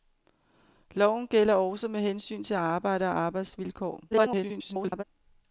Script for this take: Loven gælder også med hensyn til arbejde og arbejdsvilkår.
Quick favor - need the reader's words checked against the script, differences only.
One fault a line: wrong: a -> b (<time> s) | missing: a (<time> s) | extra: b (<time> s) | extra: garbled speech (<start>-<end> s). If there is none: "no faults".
extra: garbled speech (4.1-5.0 s)